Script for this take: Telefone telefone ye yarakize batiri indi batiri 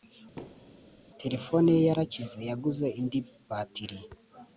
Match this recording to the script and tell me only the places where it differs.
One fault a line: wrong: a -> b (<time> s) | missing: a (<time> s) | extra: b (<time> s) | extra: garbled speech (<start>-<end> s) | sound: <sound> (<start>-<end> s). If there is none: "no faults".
sound: thud (0.4-1.0 s)
missing: telefone (1.7 s)
wrong: batiri -> yaguze (2.5 s)